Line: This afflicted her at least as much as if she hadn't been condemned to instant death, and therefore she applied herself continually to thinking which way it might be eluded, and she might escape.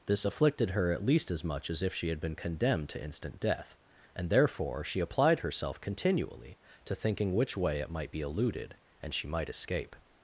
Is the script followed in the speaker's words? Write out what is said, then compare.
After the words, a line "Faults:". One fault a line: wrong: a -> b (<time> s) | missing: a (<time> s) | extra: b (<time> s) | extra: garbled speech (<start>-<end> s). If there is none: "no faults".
This afflicted her at least as much as if she had been condemned to instant death, and therefore she applied herself continually to thinking which way it might be eluded, and she might escape.
Faults:
wrong: hadn't -> had (2.1 s)